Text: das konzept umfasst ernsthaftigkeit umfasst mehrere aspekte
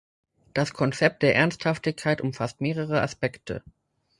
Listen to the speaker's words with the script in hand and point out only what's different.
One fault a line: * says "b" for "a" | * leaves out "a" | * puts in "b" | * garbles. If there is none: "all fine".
* says "der" for "umfasst"